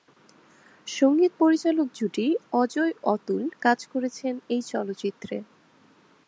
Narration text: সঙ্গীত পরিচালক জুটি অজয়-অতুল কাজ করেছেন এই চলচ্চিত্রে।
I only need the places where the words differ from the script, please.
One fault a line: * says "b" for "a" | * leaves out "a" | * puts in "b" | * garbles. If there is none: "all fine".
all fine